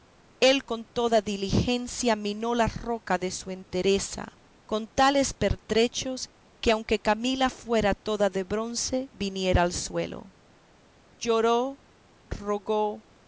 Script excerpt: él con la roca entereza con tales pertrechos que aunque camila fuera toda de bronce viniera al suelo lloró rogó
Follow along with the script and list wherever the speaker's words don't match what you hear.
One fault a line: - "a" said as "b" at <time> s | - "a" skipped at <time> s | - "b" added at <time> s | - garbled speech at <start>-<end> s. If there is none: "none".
- "toda diligencia minó" added at 0.8 s
- "de su" added at 3.2 s